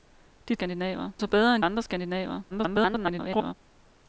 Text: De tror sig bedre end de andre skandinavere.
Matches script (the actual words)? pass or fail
fail